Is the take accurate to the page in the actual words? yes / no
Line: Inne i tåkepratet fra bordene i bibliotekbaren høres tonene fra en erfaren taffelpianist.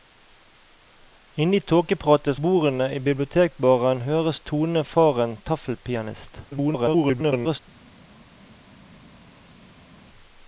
no